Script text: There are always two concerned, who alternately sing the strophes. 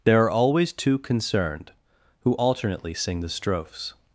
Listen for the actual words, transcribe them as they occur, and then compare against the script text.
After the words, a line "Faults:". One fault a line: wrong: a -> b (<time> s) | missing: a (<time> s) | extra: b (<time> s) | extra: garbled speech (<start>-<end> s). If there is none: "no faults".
There are always two concerned, who alternately sing the strophes.
Faults:
no faults